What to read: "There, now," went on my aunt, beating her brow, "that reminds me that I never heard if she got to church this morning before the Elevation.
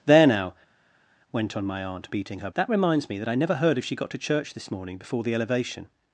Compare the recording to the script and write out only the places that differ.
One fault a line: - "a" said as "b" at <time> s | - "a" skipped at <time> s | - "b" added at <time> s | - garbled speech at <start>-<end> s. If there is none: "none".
- "brow" skipped at 2.5 s